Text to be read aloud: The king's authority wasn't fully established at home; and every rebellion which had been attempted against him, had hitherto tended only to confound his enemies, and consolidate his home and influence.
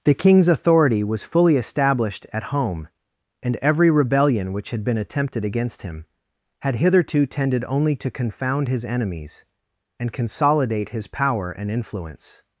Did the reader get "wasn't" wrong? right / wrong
wrong